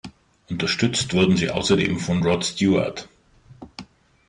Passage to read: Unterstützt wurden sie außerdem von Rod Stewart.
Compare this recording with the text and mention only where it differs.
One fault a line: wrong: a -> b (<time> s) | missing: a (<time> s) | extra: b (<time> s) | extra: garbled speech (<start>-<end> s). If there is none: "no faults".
no faults